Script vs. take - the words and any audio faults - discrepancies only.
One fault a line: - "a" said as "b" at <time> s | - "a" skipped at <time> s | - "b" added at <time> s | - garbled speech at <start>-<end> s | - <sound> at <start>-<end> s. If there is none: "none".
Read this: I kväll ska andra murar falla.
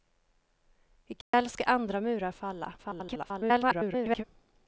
- dropout at 1.2-1.3 s
- garbled speech at 2.8-4.2 s